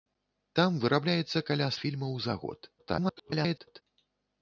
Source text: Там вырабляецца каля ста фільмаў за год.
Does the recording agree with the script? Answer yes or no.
no